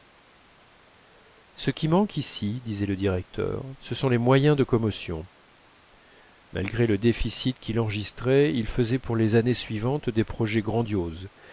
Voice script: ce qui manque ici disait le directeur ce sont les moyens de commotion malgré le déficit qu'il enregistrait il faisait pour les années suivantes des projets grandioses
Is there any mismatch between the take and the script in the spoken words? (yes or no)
no